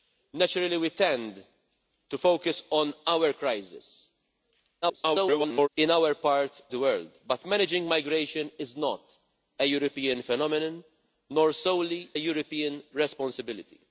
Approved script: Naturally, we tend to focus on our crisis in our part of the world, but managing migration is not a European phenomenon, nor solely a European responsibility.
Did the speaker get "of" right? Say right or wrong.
wrong